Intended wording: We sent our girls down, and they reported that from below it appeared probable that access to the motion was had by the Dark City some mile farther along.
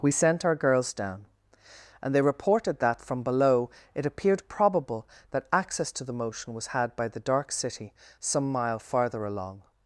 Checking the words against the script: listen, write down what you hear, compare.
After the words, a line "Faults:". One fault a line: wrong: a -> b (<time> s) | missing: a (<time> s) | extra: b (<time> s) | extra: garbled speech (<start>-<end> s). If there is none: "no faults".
We sent our girls down, and they reported that from below it appeared probable that access to the motion was had by the Dark City some mile farther along.
Faults:
no faults